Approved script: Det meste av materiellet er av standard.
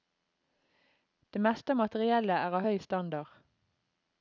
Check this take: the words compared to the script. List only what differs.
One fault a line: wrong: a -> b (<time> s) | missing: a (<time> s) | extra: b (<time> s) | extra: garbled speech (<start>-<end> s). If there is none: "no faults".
extra: høy (2.7 s)